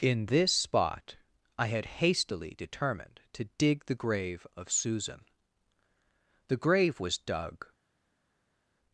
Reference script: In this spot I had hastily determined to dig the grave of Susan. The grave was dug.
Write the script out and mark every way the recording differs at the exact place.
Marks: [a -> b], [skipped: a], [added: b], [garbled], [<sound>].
In this spot I had hastily determined to dig the grave of Susan. The grave was dug.